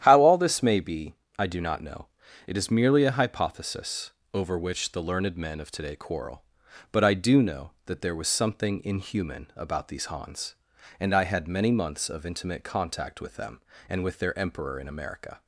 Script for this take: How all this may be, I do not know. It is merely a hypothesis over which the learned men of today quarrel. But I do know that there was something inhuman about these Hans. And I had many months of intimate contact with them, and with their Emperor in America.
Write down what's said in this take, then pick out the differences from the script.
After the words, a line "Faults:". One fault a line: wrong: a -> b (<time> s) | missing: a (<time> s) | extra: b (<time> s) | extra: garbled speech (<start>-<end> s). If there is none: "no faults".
How all this may be, I do not know. It is merely a hypothesis over which the learned men of today quarrel. But I do know that there was something inhuman about these Hans. And I had many months of intimate contact with them, and with their Emperor in America.
Faults:
no faults